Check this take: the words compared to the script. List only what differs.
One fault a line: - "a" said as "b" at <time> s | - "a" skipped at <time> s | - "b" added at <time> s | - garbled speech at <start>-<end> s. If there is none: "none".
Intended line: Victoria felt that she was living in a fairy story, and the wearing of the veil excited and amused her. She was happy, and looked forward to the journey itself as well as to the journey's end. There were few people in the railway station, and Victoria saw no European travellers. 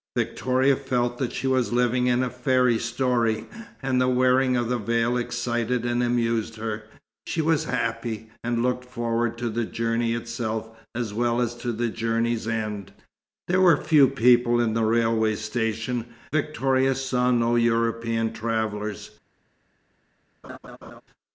- "and" skipped at 16.0 s